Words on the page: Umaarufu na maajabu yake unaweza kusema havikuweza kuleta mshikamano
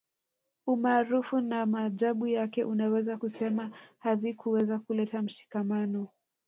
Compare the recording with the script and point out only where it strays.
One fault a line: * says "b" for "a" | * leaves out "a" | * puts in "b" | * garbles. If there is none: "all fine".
all fine